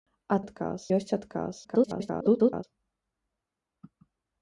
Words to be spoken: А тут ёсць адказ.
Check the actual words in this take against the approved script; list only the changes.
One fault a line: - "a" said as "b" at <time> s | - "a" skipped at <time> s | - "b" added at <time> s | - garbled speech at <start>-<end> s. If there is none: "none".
- "тут" said as "адказ" at 0.4 s
- garbled speech at 1.6-2.6 s